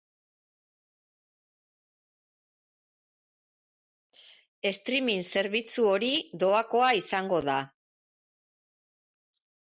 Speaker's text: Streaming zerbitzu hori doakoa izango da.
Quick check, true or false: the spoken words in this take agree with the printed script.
true